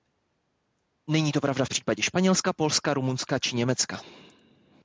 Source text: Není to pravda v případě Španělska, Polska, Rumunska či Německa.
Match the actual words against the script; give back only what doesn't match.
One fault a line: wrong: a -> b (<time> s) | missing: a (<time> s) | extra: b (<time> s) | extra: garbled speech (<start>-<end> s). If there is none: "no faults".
no faults